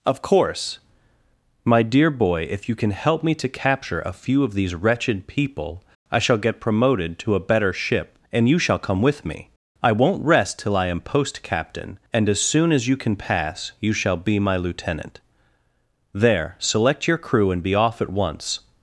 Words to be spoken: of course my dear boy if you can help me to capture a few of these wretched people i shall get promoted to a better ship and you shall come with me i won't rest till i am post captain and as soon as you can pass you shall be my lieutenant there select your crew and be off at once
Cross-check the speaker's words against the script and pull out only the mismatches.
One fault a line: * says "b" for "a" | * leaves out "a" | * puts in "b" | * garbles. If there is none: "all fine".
all fine